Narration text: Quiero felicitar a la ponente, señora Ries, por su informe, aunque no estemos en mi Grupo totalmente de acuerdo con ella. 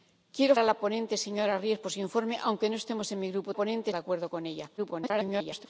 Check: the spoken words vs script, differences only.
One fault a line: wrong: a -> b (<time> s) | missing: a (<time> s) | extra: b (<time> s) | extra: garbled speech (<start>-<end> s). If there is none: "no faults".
missing: felicitar (0.6 s)
wrong: totalmente -> ponente (3.6 s)
extra: garbled speech (4.8-5.7 s)